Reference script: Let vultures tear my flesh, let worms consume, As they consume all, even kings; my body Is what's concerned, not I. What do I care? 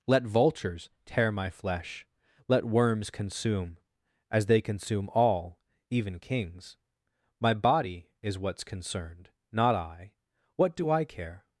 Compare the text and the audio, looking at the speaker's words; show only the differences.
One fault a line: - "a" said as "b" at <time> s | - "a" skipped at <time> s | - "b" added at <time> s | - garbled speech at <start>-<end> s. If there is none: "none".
none